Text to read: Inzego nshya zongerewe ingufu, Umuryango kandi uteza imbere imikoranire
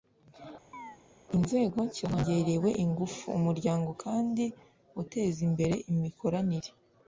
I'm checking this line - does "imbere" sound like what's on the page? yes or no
yes